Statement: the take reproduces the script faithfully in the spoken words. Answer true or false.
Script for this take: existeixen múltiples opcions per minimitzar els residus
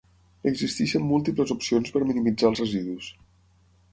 true